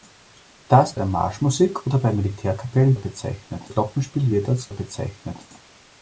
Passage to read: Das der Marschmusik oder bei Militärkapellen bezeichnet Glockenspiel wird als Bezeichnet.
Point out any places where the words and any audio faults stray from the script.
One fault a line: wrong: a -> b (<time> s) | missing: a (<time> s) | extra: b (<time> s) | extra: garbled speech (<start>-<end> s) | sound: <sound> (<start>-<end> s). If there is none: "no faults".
no faults